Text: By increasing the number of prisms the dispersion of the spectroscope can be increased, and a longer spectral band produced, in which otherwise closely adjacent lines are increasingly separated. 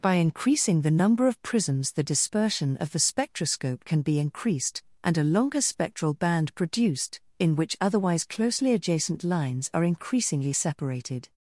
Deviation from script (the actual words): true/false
false